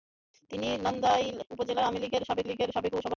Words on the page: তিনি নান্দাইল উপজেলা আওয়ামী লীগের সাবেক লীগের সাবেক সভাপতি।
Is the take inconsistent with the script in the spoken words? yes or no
no